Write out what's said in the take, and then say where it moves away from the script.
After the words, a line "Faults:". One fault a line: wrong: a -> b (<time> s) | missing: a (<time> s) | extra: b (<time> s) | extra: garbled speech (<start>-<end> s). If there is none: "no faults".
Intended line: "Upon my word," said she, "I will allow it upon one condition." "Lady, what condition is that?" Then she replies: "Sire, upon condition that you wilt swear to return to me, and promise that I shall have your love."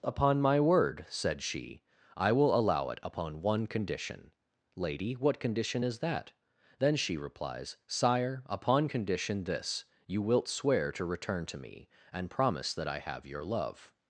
"Upon my word," said she, "I will allow it upon one condition." "Lady, what condition is that?" Then she replies: "Sire, upon condition this you wilt swear to return to me, and promise that I have your love."
Faults:
wrong: that -> this (9.4 s)
missing: shall (13.0 s)